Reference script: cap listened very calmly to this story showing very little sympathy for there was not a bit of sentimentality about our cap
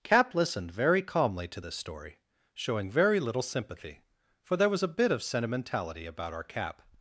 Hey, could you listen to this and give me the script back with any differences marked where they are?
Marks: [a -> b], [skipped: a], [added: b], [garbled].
cap listened very calmly to this story showing very little sympathy for there was [skipped: not] a bit of sentimentality about our cap